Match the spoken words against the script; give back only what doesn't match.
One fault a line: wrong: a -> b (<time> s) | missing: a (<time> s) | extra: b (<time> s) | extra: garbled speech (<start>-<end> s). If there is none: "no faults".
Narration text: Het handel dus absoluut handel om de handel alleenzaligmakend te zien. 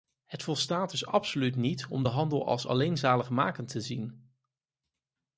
wrong: handel -> volstaat (0.4 s)
wrong: handel -> niet (1.6 s)
extra: als (2.5 s)